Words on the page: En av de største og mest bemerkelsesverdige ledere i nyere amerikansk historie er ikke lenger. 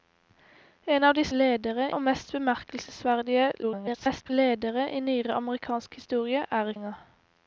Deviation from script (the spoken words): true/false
true